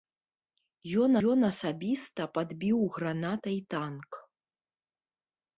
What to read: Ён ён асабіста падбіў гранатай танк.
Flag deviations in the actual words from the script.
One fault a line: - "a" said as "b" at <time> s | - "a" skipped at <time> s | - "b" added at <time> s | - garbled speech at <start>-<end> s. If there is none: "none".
none